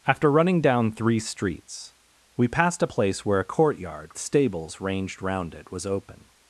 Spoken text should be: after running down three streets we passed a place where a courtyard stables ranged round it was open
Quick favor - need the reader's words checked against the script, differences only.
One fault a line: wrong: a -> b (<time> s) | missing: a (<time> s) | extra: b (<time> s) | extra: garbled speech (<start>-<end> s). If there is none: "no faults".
no faults